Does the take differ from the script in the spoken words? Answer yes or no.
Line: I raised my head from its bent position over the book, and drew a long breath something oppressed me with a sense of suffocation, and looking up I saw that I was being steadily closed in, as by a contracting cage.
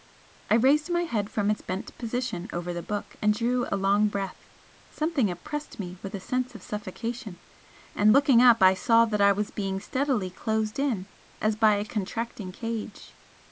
no